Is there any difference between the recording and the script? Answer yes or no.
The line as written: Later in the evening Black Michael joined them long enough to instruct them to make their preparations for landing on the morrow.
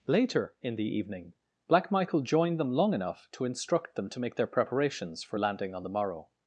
no